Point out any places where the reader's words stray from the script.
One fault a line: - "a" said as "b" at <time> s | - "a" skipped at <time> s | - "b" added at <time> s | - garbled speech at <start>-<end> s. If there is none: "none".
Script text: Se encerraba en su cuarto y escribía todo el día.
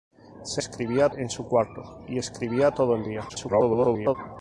- "encerraba" said as "escribía" at 0.6 s
- garbled speech at 3.3-4.2 s